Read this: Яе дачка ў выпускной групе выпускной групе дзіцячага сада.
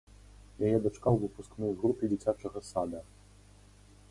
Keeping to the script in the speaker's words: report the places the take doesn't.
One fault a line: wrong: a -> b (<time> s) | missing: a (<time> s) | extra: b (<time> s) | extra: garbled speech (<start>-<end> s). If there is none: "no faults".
missing: выпускной групе (2.0 s)